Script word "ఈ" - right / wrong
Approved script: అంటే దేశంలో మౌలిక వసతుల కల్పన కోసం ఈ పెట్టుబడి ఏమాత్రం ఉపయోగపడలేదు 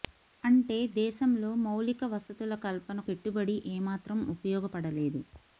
wrong